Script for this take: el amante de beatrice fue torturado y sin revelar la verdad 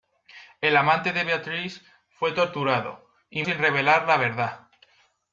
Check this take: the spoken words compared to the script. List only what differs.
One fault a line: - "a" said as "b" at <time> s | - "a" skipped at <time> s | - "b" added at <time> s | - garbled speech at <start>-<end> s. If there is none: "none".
none